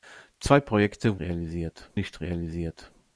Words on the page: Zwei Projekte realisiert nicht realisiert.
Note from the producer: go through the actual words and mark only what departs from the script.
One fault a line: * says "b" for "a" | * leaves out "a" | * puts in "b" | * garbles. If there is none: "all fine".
all fine